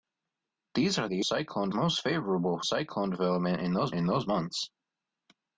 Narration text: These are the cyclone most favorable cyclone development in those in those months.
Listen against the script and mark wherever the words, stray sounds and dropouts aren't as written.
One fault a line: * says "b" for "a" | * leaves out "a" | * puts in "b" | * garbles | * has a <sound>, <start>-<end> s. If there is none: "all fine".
all fine